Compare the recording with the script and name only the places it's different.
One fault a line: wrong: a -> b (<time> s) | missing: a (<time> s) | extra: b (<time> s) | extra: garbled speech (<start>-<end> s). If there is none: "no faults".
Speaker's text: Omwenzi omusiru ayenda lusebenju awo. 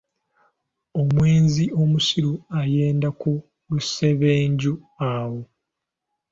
extra: ku (3.2 s)